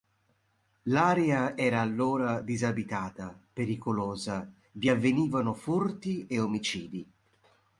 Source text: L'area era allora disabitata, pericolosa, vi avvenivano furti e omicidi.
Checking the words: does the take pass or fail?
pass